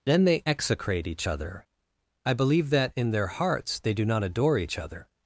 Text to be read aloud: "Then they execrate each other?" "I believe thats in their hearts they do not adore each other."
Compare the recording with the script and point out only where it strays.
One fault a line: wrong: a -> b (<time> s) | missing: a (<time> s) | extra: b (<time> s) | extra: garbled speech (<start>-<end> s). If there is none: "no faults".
wrong: thats -> that (2.7 s)